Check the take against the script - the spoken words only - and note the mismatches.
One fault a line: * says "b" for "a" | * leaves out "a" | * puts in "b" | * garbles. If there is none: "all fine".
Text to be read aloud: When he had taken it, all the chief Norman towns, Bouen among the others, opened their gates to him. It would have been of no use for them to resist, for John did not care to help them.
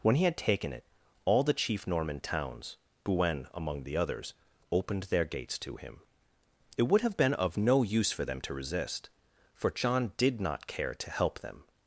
all fine